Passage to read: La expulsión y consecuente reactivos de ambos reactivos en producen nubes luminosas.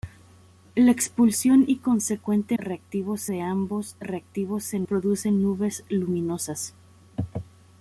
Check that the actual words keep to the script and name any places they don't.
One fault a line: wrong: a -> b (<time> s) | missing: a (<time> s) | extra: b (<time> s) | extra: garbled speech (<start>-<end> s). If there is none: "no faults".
no faults